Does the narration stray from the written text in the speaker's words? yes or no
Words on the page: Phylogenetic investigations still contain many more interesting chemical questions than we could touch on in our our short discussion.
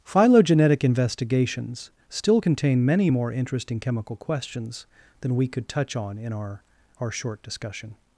no